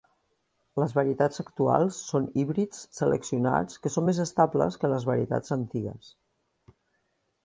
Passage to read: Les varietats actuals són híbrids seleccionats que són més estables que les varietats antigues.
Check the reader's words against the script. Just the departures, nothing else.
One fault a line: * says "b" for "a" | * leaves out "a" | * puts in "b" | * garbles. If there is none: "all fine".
all fine